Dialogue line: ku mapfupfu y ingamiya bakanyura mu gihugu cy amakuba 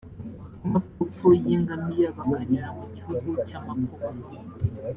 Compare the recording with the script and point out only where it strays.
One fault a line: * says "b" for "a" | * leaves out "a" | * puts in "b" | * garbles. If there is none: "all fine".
all fine